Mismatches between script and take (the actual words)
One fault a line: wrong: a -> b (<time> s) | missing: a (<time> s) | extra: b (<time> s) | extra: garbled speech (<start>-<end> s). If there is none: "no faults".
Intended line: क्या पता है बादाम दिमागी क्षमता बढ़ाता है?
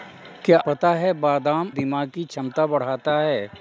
no faults